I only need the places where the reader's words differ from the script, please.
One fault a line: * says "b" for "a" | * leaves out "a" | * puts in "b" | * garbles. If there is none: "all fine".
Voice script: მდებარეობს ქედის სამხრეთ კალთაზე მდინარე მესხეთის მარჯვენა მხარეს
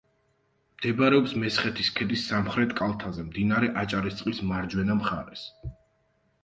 * puts in "მესხეთის"
* says "აჭარისწყლის" for "მესხეთის"